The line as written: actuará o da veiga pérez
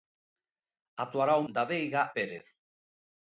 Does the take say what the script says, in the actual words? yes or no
yes